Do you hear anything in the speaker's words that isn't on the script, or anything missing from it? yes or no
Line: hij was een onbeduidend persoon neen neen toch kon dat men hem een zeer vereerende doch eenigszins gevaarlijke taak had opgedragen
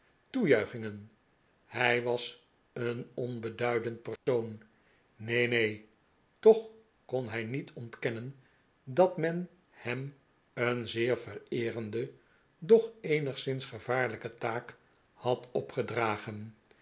yes